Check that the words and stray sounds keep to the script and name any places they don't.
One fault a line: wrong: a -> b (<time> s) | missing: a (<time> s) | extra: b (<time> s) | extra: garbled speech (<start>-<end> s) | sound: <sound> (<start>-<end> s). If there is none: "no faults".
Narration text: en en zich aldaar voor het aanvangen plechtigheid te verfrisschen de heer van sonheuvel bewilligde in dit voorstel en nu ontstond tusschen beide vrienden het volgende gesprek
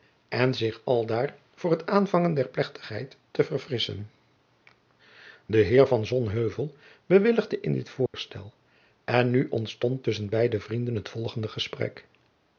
missing: en (0.5 s)
extra: der (2.3 s)
sound: dropout (8.1-8.1 s)